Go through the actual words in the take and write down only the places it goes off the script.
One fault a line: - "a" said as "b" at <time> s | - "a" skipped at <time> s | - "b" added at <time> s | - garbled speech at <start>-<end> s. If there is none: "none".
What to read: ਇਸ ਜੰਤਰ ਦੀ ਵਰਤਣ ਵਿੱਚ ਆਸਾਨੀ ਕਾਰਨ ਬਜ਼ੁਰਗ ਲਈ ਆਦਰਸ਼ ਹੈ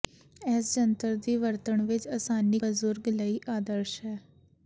- "ਕਾਰਨ" skipped at 2.6 s